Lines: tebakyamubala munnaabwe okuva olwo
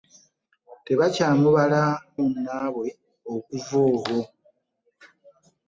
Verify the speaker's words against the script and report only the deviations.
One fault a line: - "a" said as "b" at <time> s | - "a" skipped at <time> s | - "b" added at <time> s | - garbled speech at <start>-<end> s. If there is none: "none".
none